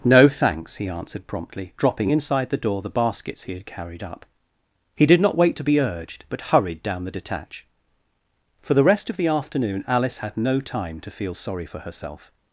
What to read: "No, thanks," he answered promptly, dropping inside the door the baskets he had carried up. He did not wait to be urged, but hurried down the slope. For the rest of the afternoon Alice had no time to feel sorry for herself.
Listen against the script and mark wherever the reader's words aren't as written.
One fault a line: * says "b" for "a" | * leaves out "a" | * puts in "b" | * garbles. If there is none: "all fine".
* says "detach" for "slope"